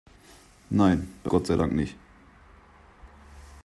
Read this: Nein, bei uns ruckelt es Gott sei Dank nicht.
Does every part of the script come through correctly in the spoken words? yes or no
no